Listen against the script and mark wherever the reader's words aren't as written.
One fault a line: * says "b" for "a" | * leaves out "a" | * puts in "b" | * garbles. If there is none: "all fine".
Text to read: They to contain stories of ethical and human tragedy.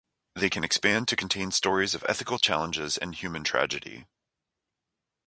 * puts in "can expand"
* puts in "challenges"